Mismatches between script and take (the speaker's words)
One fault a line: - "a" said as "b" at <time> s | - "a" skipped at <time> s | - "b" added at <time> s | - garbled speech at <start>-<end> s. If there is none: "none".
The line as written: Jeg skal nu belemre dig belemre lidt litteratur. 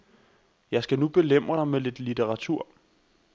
- "belemre" said as "med" at 1.7 s